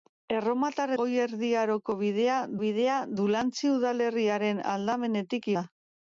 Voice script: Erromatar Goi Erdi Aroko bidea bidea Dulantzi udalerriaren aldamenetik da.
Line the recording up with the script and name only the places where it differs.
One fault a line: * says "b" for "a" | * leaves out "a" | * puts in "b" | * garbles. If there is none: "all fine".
all fine